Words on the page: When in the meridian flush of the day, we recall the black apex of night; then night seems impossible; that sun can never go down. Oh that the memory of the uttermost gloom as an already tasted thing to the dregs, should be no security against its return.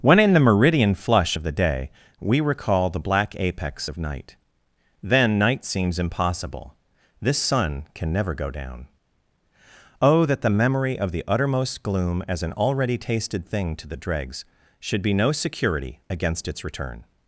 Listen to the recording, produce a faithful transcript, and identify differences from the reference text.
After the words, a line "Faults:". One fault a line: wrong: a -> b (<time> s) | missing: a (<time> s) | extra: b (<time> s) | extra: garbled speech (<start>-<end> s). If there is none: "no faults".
When in the meridian flush of the day, we recall the black apex of night; then night seems impossible; this sun can never go down. Oh that the memory of the uttermost gloom as an already tasted thing to the dregs, should be no security against its return.
Faults:
wrong: that -> this (7.2 s)